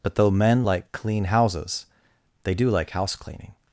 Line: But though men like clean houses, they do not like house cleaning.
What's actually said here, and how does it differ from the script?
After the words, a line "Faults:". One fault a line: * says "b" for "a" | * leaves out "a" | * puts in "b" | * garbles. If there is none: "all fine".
But though men like clean houses, they do like house cleaning.
Faults:
* leaves out "not"